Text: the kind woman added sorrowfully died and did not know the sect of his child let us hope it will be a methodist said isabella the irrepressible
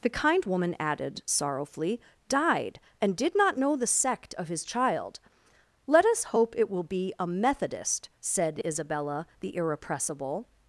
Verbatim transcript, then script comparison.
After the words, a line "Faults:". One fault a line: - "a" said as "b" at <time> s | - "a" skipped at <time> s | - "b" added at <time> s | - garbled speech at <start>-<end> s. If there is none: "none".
the kind woman added sorrowfully died and did not know the sect of his child let us hope it will be a methodist said isabella the irrepressible
Faults:
none